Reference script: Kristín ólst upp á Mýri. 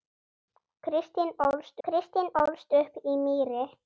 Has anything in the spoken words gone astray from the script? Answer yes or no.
yes